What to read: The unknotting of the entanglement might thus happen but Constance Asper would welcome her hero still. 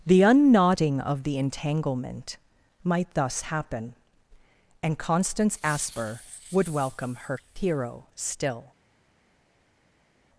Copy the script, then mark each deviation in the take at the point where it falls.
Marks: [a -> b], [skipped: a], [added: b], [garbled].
The unknotting of the entanglement might thus happen [but -> and] Constance Asper would welcome her hero still.